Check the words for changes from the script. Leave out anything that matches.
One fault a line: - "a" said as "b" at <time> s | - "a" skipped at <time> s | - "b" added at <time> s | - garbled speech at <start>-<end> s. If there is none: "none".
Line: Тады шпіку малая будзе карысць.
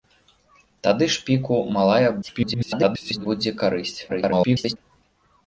- garbled speech at 2.2-3.3 s
- garbled speech at 4.1-4.8 s